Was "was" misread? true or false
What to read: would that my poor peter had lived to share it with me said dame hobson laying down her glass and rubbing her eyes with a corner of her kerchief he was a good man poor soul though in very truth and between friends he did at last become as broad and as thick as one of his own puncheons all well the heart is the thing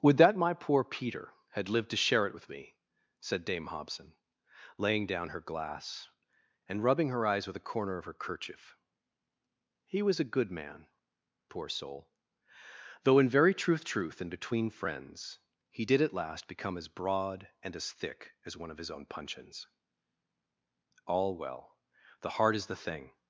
false